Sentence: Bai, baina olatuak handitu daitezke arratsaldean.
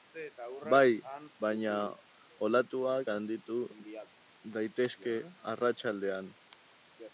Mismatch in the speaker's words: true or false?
false